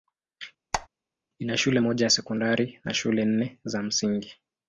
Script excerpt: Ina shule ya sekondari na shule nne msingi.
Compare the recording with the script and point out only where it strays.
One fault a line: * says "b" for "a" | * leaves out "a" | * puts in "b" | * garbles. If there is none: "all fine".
* puts in "moja"
* puts in "za"